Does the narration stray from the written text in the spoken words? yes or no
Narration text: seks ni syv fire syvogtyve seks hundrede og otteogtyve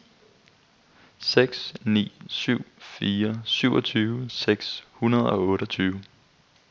no